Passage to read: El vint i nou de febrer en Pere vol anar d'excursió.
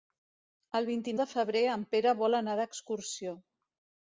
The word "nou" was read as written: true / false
false